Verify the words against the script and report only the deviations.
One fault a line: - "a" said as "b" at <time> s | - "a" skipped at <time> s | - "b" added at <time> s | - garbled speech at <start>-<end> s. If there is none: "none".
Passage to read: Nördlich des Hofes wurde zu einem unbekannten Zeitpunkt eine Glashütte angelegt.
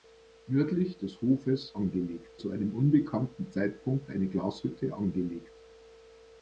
- "wurde" said as "angelegt" at 1.7 s